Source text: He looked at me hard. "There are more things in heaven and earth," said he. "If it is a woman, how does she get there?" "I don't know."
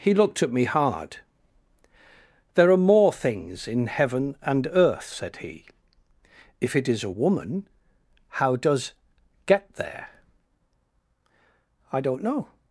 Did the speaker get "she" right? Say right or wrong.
wrong